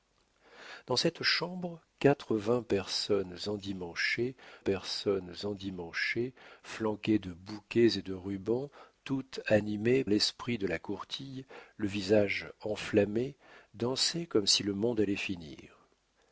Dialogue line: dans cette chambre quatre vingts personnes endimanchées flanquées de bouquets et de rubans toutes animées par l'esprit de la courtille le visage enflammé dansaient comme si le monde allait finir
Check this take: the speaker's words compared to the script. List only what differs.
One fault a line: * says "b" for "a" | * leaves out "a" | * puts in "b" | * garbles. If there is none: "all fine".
* puts in "personnes endimanchées"
* leaves out "par"